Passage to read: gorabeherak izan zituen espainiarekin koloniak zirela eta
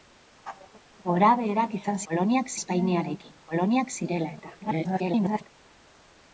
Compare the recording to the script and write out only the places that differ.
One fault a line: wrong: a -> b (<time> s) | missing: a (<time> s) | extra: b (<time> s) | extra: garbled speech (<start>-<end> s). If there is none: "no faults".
wrong: zituen -> koloniak (2.1 s)
extra: garbled speech (4.6-5.5 s)